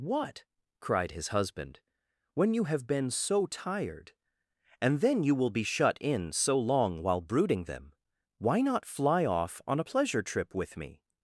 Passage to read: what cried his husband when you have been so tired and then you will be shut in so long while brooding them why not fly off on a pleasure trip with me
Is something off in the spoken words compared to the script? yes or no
no